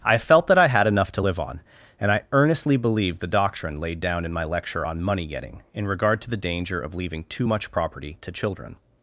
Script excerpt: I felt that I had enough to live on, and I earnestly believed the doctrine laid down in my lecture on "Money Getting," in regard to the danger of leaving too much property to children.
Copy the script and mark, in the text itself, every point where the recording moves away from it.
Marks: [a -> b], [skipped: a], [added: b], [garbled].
I felt that I had enough to live on, and I earnestly believed the doctrine laid down in my lecture on "Money Getting," in regard to the danger of leaving too much property to children.